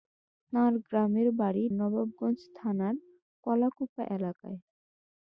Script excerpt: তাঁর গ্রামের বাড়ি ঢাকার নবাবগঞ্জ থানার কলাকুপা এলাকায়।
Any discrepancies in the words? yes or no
yes